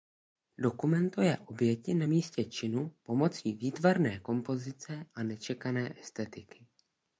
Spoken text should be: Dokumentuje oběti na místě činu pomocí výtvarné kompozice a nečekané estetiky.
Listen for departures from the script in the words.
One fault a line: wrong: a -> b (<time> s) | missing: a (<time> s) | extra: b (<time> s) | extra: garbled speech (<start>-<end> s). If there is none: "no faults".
no faults